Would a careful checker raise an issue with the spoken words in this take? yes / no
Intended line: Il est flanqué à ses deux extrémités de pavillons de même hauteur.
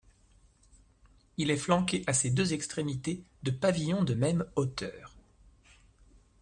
no